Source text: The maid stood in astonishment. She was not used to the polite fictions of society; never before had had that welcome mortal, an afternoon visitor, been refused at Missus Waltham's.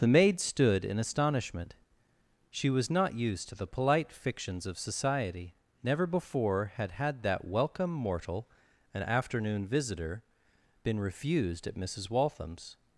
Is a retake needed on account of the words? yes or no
no